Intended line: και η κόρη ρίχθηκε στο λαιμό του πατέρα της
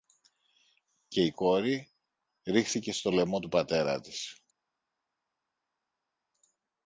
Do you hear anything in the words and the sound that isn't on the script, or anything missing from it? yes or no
no